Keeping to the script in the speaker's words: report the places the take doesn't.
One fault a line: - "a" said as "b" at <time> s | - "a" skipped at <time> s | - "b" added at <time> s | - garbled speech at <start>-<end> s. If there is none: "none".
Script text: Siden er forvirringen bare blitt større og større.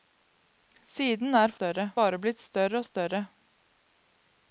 - "forvirringen" said as "større" at 1.5 s